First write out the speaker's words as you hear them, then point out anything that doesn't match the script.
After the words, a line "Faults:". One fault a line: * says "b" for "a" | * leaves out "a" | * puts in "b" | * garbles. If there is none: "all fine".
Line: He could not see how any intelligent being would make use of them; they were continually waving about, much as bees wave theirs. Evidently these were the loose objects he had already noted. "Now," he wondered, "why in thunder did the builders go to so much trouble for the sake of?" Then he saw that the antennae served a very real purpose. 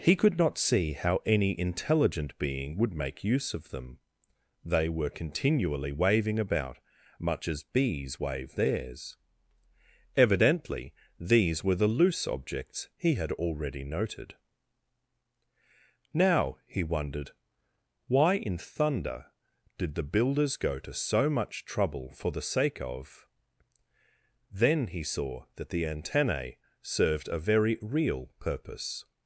He could not see how any intelligent being would make use of them; they were continually waving about, much as bees wave theirs. Evidently these were the loose objects he had already noted. "Now," he wondered, "why in thunder did the builders go to so much trouble for the sake of?" Then he saw that the antennae served a very real purpose.
Faults:
all fine